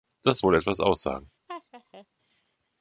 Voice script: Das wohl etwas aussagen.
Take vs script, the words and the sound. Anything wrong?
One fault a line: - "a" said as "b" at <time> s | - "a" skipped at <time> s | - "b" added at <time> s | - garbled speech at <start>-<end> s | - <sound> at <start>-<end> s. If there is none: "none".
- laugh at 1.5-2.1 s